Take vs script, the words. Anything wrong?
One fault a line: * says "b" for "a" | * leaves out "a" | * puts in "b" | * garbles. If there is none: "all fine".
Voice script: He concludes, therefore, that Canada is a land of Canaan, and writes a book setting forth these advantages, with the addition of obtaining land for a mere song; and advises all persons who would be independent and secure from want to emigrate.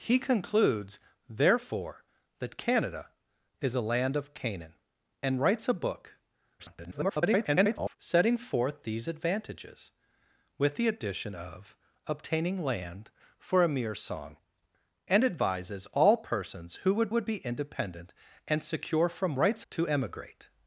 * garbles
* puts in "would"
* says "writes" for "want"